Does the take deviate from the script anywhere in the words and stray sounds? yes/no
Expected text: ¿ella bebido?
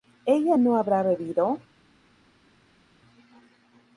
yes